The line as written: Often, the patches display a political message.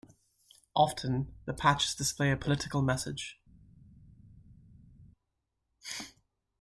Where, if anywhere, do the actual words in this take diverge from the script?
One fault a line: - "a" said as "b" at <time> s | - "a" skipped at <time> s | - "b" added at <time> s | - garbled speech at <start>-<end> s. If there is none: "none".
none